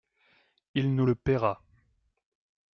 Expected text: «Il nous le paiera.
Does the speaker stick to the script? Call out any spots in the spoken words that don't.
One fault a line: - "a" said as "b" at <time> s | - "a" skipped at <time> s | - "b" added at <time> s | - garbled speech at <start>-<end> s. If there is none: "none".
none